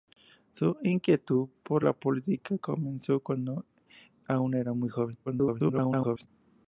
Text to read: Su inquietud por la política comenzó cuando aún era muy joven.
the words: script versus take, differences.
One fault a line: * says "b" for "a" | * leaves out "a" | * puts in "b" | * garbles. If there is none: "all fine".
* garbles